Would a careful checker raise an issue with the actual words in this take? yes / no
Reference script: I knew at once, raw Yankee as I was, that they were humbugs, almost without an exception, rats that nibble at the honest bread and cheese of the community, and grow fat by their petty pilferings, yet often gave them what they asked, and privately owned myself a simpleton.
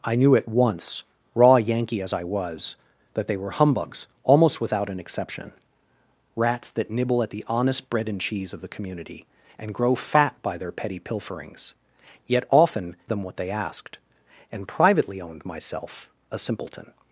yes